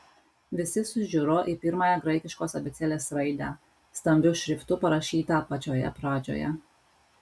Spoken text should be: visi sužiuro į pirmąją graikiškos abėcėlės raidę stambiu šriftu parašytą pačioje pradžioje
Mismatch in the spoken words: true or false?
false